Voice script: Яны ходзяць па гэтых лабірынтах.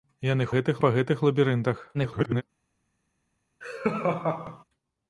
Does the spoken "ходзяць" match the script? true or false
false